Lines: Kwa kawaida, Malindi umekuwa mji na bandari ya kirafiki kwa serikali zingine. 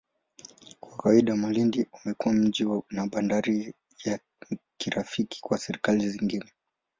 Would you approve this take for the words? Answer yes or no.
yes